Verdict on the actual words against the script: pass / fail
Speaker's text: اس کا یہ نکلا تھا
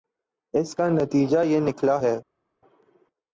fail